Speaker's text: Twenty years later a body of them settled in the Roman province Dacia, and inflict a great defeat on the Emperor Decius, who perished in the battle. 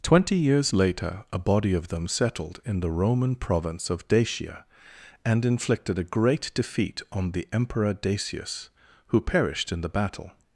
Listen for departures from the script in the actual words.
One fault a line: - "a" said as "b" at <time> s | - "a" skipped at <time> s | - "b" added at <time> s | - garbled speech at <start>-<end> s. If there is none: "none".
- "of" added at 3.9 s
- "inflict" said as "inflicted" at 5.5 s